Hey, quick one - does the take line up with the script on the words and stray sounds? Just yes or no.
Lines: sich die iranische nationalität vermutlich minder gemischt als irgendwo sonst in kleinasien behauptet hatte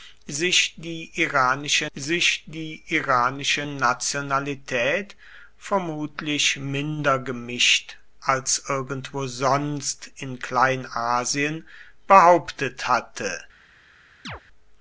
no